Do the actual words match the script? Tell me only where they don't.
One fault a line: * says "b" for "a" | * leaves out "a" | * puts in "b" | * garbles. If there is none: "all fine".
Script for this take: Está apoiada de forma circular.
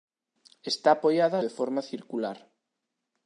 all fine